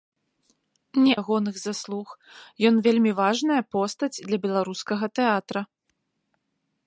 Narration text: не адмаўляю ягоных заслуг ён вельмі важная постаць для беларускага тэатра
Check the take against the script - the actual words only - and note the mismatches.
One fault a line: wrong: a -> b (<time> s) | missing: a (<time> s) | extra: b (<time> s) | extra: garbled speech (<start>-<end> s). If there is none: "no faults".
missing: адмаўляю (1.1 s)